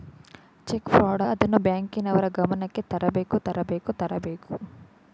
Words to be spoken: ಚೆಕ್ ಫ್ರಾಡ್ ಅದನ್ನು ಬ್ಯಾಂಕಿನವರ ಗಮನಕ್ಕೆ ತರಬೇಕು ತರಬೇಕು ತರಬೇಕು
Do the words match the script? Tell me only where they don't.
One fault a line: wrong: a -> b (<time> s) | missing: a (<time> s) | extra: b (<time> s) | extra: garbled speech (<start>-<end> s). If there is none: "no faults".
no faults